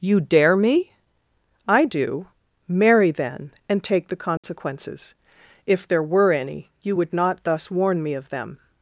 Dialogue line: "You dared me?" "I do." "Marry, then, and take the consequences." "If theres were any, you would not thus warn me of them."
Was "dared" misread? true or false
true